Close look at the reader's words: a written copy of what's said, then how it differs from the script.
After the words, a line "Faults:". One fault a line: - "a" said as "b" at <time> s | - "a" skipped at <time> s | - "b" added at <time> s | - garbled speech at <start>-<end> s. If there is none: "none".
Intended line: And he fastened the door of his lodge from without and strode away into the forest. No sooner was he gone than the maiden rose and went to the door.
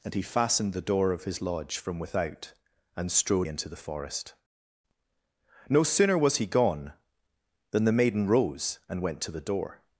And he fastened the door of his lodge from without and strode into the forest. No sooner was he gone than the maiden rose and went to the door.
Faults:
- "away" skipped at 3.5 s